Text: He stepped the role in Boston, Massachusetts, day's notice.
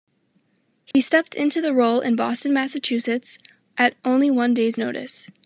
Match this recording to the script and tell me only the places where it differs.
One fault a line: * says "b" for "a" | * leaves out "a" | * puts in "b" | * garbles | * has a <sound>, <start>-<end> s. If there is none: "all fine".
* has a dropout, 0.9-0.9 s
* puts in "into"
* puts in "at only one"